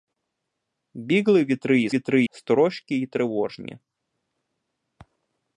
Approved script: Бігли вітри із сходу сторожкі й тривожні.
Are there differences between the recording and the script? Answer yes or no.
yes